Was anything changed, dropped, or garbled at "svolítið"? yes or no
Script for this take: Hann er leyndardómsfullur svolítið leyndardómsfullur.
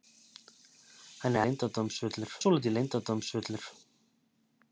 no